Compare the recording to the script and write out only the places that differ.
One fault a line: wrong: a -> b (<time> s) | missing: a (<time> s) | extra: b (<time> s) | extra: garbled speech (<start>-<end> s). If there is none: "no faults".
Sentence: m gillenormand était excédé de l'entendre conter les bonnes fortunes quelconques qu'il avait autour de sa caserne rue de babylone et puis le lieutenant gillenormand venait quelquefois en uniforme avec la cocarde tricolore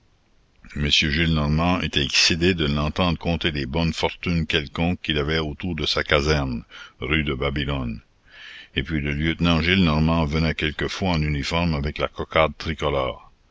no faults